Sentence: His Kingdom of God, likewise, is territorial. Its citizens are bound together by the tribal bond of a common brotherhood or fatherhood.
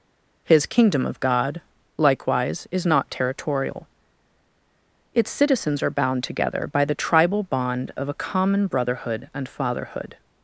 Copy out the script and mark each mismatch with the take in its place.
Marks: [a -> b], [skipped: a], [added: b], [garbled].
His Kingdom of God, likewise, is [added: not] territorial. Its citizens are bound together by the tribal bond of a common brotherhood [or -> and] fatherhood.